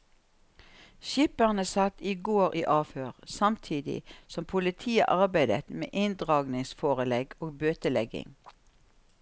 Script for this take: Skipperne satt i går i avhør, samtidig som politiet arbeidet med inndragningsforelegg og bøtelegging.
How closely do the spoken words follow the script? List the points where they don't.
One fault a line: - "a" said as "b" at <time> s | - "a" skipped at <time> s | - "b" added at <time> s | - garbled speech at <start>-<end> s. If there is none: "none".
none